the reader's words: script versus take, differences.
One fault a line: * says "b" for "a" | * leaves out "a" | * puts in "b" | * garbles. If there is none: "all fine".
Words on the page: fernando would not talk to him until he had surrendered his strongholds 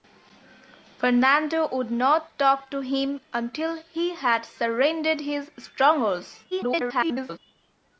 * garbles